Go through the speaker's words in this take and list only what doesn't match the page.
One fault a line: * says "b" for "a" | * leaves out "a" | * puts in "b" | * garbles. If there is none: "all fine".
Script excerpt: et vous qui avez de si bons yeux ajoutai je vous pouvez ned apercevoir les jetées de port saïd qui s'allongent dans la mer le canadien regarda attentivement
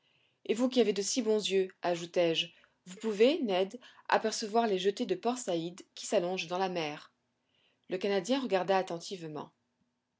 all fine